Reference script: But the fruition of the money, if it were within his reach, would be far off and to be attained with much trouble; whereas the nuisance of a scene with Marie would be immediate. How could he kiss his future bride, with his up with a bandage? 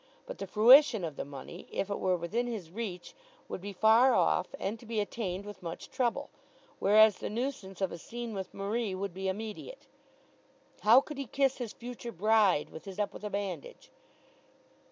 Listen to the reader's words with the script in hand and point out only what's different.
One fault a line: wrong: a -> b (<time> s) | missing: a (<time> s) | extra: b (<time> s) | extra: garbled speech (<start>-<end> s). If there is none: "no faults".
no faults